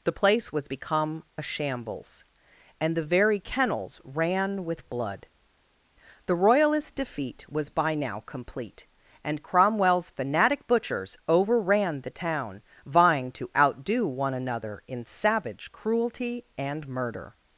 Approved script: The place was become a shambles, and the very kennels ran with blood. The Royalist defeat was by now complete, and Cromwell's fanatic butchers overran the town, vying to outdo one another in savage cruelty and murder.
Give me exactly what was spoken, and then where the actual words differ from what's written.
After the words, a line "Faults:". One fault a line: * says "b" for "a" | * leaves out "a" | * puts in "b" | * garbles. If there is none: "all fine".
The place was become a shambles, and the very kennels ran with blood. The Royalist defeat was by now complete, and Cromwell's fanatic butchers overran the town, vying to outdo one another in savage cruelty and murder.
Faults:
all fine